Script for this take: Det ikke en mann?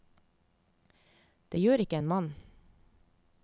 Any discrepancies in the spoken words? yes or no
yes